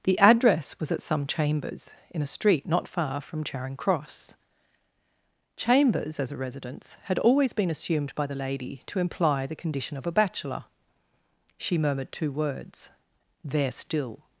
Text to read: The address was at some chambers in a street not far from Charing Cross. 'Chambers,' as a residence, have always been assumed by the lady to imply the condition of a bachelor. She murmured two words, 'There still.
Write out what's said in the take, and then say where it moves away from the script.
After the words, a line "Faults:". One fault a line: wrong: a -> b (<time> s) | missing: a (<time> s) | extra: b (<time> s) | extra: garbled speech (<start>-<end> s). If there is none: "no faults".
The address was at some chambers in a street not far from Charing Cross. 'Chambers,' as a residence, had always been assumed by the lady to imply the condition of a bachelor. She murmured two words, 'There still.
Faults:
wrong: have -> had (7.0 s)